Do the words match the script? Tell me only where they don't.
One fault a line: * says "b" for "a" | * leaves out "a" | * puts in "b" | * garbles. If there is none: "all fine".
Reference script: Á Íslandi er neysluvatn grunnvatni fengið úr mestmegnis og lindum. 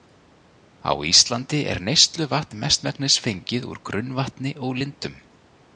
* says "mestmegnis" for "grunnvatni"
* says "grunnvatni" for "mestmegnis"